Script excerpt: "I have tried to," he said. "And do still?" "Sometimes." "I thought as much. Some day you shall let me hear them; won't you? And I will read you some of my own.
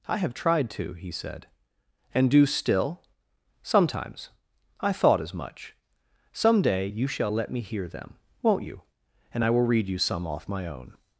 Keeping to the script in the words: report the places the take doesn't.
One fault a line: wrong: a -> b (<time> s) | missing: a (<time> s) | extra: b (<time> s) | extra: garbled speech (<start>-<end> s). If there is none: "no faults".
wrong: of -> off (10.3 s)